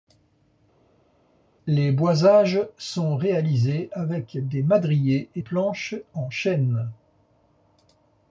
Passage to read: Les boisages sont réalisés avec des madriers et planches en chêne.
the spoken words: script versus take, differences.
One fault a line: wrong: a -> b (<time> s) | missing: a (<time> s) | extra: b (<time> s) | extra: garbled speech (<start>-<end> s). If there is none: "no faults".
no faults